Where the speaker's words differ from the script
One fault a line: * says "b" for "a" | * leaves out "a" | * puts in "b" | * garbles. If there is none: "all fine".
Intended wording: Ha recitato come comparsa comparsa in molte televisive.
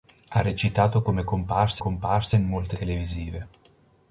all fine